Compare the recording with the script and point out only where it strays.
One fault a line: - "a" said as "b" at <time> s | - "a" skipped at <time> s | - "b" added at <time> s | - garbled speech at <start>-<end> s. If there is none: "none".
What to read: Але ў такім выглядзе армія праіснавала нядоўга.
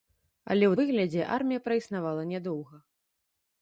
- "такім" skipped at 0.8 s